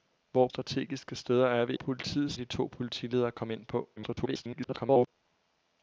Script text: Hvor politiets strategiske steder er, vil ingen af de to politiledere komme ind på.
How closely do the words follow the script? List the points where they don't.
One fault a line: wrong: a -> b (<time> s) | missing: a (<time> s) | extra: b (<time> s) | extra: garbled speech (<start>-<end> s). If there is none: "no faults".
missing: politiets (0.5 s)
wrong: ingen -> politiets (1.7 s)
extra: garbled speech (4.0-5.1 s)